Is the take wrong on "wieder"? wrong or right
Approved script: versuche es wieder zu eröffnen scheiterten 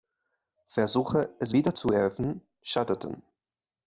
right